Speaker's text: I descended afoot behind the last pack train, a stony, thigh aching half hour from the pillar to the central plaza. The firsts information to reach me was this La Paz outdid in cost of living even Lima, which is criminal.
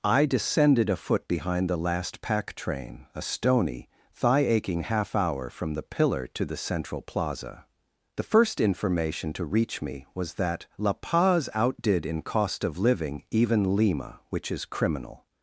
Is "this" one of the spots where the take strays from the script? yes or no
yes